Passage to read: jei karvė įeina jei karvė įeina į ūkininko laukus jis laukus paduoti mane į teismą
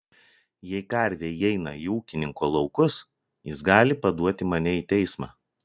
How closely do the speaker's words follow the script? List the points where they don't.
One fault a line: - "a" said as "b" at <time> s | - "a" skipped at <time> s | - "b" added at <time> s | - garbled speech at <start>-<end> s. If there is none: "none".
- "jei karvė įeina" skipped at 1.7 s
- "laukus" said as "gali" at 3.7 s